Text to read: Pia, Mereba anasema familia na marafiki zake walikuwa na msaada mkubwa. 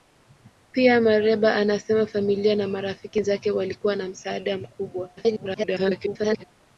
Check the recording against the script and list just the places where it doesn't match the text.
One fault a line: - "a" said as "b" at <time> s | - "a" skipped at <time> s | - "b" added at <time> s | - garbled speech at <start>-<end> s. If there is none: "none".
- garbled speech at 5.2-6.4 s